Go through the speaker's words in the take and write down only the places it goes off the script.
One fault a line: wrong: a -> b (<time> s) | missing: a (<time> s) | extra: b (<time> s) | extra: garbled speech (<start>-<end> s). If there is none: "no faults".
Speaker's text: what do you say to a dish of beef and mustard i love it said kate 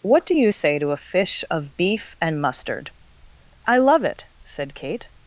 wrong: dish -> fish (1.0 s)